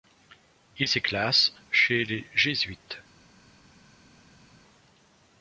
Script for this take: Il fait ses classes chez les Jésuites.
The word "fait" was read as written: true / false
false